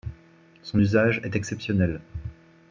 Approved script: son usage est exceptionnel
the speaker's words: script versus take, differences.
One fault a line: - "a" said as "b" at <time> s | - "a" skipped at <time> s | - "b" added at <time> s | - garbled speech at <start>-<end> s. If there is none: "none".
none